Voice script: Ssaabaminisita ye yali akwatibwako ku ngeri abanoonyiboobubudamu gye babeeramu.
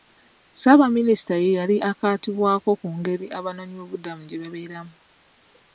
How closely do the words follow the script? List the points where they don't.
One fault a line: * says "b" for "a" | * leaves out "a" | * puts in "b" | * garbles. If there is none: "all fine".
all fine